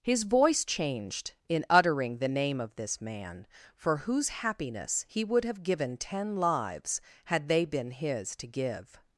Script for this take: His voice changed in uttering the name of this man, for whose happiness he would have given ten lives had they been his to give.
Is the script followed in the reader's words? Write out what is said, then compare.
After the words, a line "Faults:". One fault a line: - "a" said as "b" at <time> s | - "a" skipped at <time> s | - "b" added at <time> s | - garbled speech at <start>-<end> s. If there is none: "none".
His voice changed in uttering the name of this man, for whose happiness he would have given ten lives had they been his to give.
Faults:
none